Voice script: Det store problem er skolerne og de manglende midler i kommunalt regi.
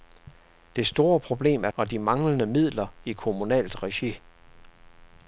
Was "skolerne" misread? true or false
true